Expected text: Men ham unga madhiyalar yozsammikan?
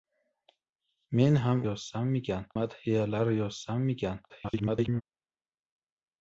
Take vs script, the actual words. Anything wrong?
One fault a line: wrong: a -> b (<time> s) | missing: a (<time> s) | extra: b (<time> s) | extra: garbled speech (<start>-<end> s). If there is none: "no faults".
wrong: unga -> yozsammikan (1.7 s)
extra: garbled speech (4.3-5.0 s)